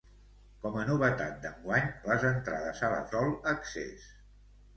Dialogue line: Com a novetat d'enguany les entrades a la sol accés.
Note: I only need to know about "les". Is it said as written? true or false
true